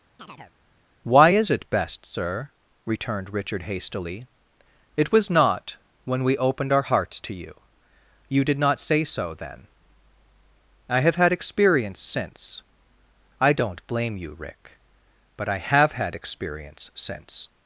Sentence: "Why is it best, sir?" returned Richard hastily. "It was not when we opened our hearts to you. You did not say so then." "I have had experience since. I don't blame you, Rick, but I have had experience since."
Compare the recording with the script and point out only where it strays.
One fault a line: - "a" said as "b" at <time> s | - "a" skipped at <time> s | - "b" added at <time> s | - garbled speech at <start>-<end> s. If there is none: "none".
none